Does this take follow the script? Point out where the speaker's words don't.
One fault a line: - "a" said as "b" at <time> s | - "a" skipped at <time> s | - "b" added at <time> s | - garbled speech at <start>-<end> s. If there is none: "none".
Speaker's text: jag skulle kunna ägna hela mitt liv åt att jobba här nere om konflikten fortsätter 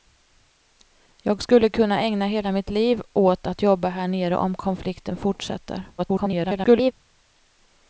- garbled speech at 6.0-6.9 s